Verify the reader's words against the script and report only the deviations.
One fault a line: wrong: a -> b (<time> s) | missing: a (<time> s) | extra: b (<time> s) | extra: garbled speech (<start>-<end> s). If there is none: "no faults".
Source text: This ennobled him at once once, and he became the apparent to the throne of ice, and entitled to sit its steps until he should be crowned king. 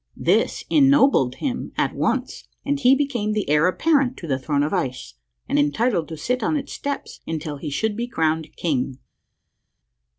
missing: once (2.4 s)
extra: heir (3.5 s)
extra: on (6.4 s)